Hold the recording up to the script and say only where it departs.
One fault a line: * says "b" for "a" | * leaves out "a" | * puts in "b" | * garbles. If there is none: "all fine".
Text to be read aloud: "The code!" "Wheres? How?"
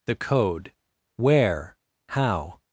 * says "Where" for "Wheres"